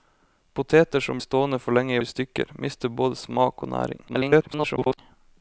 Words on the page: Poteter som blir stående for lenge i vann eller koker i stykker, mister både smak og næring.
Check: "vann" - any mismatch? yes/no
yes